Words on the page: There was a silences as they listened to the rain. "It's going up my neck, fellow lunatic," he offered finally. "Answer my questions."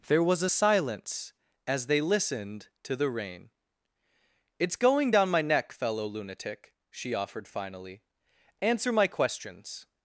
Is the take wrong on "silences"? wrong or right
wrong